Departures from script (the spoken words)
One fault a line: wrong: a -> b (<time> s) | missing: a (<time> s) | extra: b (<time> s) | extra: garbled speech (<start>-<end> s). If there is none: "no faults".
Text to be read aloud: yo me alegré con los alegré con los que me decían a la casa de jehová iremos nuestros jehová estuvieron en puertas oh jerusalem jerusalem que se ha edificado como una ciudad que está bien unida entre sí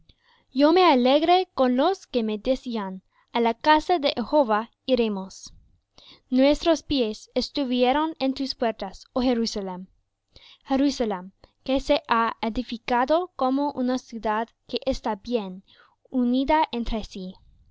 missing: alegré con los (2.1 s)
wrong: jehová -> pies (6.8 s)
extra: tus (8.3 s)